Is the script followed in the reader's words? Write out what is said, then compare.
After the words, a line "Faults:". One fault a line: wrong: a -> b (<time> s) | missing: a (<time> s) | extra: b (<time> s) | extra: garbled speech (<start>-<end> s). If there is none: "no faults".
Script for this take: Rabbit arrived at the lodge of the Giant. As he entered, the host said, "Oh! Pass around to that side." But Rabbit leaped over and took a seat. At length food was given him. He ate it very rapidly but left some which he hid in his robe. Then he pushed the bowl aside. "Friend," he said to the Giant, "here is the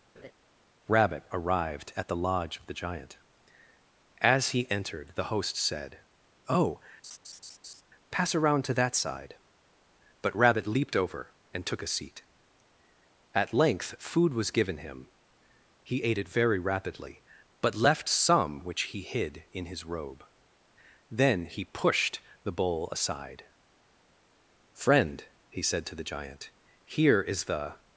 Rabbit arrived at the lodge of the Giant. As he entered, the host said, "Oh! Pass around to that side." But Rabbit leaped over and took a seat. At length food was given him. He ate it very rapidly but left some which he hid in his robe. Then he pushed the bowl aside. "Friend," he said to the Giant, "here is the
Faults:
no faults